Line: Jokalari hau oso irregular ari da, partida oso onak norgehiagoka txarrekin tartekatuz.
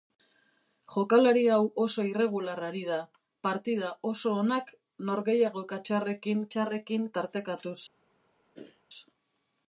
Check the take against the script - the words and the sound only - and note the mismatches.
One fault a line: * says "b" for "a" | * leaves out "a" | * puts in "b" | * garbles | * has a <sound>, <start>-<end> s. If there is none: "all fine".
* puts in "txarrekin"
* has a throat clearing, 8.5-8.8 s